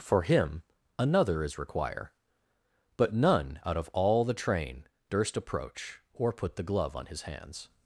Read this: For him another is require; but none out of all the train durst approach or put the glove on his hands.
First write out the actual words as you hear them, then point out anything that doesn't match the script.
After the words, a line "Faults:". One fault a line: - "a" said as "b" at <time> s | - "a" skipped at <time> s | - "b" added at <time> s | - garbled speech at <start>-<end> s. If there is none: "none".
For him another is require; but none out of all the train durst approach or put the glove on his hands.
Faults:
none